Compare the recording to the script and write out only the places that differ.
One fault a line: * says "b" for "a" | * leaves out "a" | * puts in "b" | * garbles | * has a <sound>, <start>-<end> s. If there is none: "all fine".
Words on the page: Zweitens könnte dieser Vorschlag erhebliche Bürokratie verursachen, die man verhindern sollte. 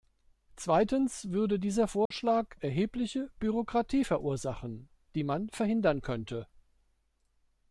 * says "würde" for "könnte"
* has a dropout, 2.1-2.1 s
* says "könnte" for "sollte"